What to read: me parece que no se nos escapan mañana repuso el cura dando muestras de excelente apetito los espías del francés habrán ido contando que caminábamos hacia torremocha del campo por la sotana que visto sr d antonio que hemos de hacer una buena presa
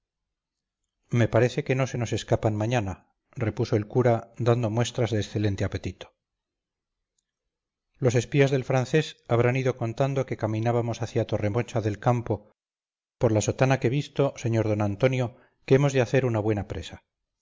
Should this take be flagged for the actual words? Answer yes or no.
no